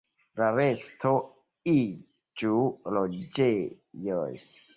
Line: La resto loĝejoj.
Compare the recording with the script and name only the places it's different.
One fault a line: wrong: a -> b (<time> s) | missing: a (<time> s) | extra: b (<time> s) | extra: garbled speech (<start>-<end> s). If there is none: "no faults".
extra: iĝu (1.7 s)